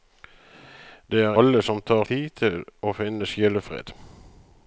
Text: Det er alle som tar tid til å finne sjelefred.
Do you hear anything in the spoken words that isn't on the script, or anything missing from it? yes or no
no